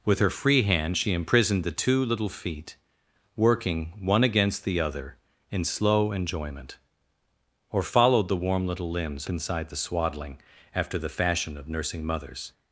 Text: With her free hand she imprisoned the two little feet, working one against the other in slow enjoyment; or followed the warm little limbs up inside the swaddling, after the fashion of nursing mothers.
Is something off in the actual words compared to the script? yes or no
yes